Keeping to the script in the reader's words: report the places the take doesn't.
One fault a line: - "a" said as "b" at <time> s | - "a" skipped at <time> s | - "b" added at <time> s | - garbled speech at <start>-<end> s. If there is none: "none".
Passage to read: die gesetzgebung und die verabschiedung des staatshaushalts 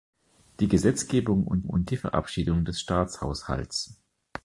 - "und" added at 1.6 s